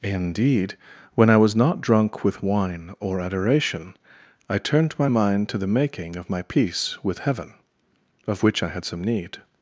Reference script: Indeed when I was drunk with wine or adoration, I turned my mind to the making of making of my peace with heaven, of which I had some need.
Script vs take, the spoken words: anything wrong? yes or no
yes